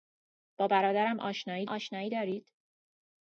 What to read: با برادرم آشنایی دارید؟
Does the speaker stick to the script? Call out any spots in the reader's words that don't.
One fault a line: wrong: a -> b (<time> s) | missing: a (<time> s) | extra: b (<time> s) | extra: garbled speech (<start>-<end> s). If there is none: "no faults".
extra: آشنایی (1.7 s)